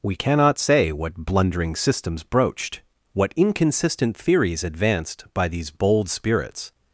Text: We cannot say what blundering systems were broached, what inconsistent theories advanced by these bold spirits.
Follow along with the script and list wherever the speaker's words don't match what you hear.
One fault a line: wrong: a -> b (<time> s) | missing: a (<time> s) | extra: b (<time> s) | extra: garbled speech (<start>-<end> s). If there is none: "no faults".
missing: were (2.2 s)